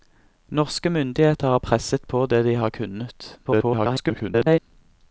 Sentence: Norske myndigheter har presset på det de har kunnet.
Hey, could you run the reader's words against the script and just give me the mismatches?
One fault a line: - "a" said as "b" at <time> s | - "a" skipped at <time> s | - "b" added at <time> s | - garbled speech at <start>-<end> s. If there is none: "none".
- garbled speech at 3.4-4.6 s